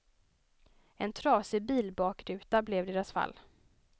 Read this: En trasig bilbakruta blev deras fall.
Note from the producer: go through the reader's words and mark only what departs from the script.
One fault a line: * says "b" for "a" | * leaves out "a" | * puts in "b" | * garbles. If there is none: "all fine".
all fine